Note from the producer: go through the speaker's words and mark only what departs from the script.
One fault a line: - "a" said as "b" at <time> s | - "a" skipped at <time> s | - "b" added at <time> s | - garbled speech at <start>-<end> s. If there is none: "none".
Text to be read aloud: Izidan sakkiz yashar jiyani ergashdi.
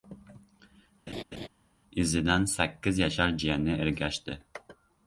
none